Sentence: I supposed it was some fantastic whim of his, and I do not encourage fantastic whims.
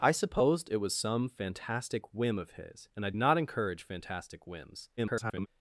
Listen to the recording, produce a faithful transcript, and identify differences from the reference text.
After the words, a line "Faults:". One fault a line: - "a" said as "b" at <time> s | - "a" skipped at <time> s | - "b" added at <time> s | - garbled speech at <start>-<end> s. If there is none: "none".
I supposed it was some fantastic whim of his, and I not encourage fantastic whims. [garbled]
Faults:
- "do" skipped at 3.1 s
- garbled speech at 5.0-5.5 s